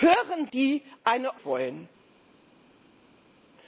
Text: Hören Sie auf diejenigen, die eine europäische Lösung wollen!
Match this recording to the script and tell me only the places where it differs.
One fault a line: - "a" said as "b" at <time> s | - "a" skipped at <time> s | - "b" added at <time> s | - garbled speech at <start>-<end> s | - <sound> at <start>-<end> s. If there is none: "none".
- "Sie auf diejenigen" skipped at 0.5 s
- "europäische Lösung" skipped at 1.4 s